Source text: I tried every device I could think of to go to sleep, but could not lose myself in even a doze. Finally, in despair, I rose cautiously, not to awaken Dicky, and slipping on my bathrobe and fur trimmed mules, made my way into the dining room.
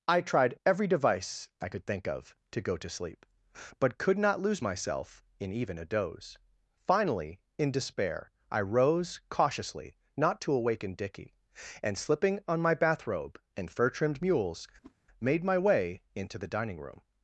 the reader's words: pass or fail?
pass